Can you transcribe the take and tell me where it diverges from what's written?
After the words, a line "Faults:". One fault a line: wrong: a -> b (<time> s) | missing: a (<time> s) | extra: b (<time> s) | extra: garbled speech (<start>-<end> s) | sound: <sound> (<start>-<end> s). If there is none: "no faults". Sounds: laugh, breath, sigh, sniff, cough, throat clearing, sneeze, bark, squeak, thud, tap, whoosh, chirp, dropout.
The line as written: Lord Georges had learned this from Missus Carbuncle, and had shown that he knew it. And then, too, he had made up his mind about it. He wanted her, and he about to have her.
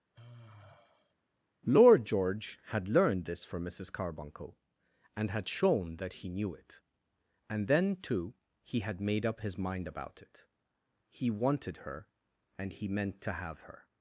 Lord George had learned this from Missus Carbuncle, and had shown that he knew it. And then, too, he had made up his mind about it. He wanted her, and he meant to have her.
Faults:
sound: sigh (0.1-1.2 s)
wrong: Georges -> George (2.0 s)
wrong: about -> meant (12.9 s)